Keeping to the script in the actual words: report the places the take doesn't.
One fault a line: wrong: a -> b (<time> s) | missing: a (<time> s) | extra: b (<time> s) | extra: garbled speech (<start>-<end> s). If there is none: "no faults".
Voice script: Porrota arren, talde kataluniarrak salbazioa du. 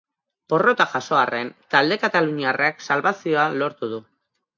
extra: jaso (0.9 s)
extra: lortu (3.6 s)